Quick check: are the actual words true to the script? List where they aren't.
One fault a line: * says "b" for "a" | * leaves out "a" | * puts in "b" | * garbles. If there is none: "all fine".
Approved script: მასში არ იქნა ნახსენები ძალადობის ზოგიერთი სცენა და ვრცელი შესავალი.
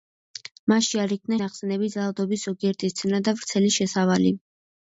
all fine